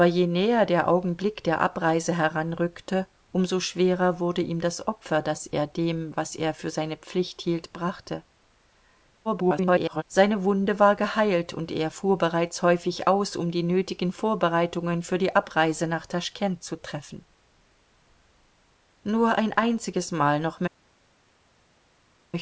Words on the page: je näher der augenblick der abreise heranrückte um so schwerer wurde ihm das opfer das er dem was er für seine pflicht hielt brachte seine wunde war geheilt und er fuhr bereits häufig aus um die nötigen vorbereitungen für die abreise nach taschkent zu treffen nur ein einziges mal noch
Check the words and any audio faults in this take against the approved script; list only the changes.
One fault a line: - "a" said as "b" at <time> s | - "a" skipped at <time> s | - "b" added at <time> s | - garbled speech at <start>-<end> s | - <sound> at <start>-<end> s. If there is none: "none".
- garbled speech at 9.2-10.0 s